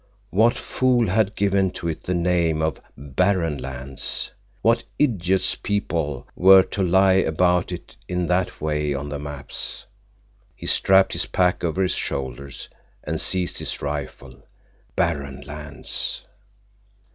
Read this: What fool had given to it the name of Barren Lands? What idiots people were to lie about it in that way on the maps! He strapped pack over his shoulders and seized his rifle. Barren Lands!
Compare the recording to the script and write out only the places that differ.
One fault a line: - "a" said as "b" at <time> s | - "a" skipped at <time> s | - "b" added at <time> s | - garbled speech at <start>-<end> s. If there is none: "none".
- "his" added at 11.1 s